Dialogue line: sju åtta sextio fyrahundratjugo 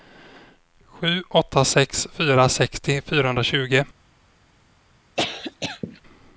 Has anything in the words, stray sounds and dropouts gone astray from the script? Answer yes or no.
yes